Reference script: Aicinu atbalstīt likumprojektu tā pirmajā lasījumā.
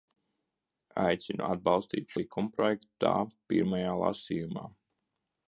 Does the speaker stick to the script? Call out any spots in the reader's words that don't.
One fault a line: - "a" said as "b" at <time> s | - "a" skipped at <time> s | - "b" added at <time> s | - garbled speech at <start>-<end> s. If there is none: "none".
none